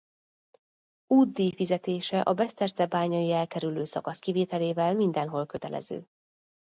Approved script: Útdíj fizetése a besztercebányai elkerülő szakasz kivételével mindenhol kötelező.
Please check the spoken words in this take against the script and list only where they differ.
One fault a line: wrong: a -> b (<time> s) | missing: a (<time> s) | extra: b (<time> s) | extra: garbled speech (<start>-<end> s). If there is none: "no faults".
no faults